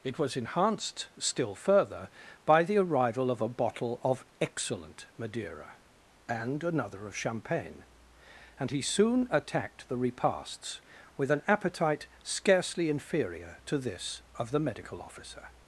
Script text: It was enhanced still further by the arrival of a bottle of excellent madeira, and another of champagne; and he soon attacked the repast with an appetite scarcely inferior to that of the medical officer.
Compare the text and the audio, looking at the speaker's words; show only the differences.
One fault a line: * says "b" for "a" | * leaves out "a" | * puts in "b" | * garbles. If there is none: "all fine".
* says "repasts" for "repast"
* says "this" for "that"